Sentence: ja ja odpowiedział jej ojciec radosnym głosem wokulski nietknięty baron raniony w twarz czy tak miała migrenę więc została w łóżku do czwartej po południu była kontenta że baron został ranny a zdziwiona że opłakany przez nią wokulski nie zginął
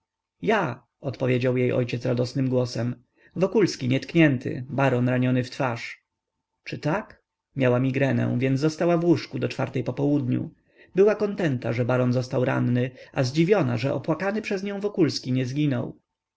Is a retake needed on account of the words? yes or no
yes